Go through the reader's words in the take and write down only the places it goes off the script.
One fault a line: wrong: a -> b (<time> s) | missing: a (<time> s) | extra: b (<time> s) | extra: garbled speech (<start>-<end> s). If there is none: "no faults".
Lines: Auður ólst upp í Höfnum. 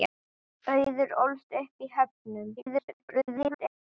extra: garbled speech (2.6-3.8 s)